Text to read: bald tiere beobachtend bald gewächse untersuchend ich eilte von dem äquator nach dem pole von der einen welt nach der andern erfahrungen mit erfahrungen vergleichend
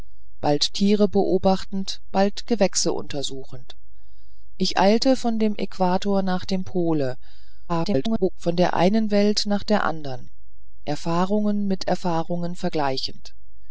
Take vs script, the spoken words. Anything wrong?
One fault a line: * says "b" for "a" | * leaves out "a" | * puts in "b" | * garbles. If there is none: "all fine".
* garbles